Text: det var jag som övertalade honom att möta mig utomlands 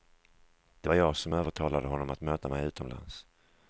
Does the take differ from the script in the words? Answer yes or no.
no